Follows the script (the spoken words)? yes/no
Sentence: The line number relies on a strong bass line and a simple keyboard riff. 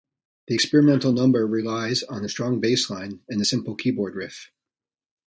no